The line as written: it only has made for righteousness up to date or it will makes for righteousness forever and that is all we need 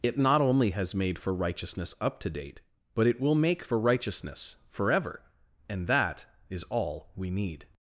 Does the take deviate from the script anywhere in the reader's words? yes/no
yes